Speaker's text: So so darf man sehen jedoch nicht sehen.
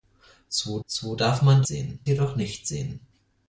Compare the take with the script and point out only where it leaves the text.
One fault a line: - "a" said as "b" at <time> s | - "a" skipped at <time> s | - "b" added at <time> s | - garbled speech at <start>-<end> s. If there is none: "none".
none